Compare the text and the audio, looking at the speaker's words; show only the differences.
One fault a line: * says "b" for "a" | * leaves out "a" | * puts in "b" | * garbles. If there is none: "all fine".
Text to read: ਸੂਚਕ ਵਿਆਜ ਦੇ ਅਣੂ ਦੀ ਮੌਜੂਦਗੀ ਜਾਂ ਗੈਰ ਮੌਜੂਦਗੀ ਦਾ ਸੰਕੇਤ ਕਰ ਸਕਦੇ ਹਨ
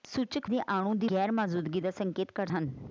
* leaves out "ਵਿਆਜ"
* leaves out "ਮੌਜੂਦਗੀ ਜਾਂ"
* leaves out "ਸਕਦੇ"